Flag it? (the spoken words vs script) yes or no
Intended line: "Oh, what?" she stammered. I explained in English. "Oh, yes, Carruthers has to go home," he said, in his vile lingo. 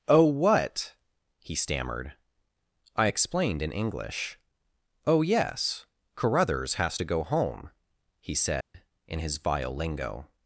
yes